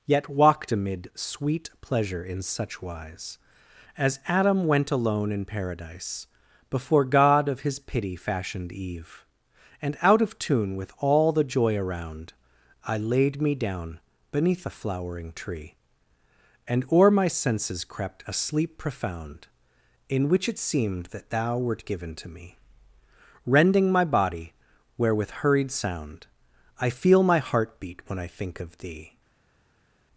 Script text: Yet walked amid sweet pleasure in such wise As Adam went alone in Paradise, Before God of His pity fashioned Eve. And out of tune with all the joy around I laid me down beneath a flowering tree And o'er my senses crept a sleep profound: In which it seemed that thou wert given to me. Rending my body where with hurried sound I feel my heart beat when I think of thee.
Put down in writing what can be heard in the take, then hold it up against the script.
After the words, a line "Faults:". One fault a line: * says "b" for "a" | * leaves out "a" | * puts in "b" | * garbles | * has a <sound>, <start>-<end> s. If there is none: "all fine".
Yet walked amid sweet pleasure in such wise As Adam went alone in Paradise, Before God of His pity fashioned Eve. And out of tune with all the joy around I laid me down beneath a flowering tree And o'er my senses crept a sleep profound: In which it seemed that thou wert given to me. Rending my body where with hurried sound I feel my heart beat when I think of thee.
Faults:
all fine